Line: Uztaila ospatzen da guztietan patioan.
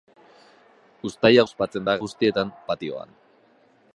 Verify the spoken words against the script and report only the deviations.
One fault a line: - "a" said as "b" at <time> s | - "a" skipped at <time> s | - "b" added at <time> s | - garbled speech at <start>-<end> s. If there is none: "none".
none